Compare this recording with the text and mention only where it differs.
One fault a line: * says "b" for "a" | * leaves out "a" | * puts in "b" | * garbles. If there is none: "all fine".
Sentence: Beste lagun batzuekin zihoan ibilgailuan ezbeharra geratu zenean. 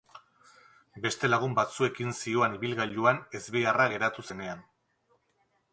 all fine